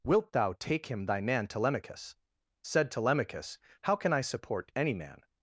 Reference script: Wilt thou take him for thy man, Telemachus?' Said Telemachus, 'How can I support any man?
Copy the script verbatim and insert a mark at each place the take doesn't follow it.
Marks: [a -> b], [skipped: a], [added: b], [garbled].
Wilt thou take him [skipped: for] thy man, Telemachus?' Said Telemachus, 'How can I support any man?